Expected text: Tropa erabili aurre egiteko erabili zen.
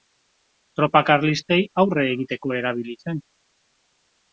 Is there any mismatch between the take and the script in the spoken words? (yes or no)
yes